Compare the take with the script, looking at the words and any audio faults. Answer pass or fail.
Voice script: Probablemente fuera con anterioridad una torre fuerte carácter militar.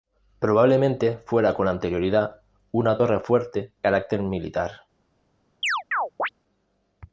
fail